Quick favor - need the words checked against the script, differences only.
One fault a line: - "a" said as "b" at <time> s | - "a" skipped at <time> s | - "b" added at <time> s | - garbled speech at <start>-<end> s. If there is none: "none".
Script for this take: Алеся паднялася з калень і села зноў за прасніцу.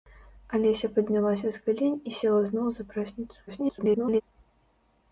- garbled speech at 3.5-4.2 s